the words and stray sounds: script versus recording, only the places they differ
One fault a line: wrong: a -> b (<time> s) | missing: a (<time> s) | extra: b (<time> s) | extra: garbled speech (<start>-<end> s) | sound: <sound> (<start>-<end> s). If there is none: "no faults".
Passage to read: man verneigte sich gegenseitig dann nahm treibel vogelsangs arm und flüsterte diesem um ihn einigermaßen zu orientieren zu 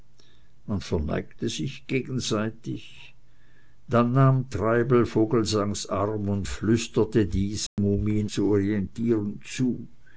sound: dropout (7.7-7.8 s)
missing: einigermaßen (8.3 s)